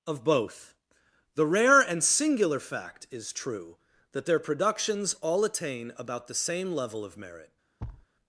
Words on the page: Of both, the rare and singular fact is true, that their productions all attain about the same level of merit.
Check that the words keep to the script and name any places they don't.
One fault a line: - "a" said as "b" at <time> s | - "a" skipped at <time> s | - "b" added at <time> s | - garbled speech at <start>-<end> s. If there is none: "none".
none